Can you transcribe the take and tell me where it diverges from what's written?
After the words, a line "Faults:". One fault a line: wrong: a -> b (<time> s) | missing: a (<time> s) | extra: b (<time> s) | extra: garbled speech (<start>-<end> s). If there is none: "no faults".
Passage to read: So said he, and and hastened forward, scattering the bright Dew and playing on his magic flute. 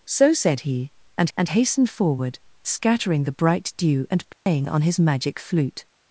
So said he, and and hastened forward, scattering the bright Dew and playing on his magic flute.
Faults:
no faults